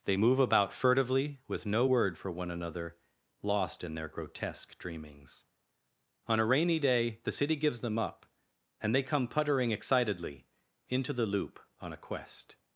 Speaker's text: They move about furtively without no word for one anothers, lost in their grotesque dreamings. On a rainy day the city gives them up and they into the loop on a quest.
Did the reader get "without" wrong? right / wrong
wrong